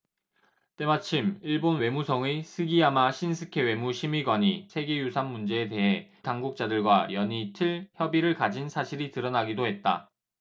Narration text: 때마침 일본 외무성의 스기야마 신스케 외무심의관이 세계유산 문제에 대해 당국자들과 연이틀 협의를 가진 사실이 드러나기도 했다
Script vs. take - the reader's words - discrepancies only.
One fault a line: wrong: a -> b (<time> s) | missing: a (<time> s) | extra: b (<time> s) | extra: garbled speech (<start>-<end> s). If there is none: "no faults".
no faults